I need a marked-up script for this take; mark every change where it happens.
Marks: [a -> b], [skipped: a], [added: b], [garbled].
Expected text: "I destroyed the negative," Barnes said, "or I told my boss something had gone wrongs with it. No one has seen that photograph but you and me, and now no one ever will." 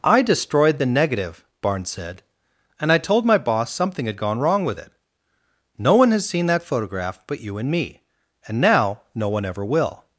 "I destroyed the negative," Barnes said, ["or -> and] I told my boss something had gone [wrongs -> wrong] with it. No one has seen that photograph but you and me, and now no one ever will."